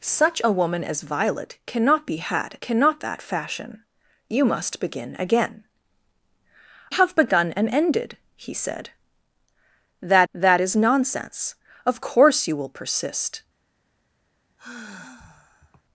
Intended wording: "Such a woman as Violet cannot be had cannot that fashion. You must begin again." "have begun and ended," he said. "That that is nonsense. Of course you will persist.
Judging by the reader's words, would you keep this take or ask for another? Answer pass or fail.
pass